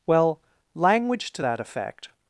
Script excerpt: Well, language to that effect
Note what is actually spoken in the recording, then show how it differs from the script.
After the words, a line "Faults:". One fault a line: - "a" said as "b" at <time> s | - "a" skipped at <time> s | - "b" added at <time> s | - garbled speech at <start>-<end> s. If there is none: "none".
Well, language to that effect
Faults:
none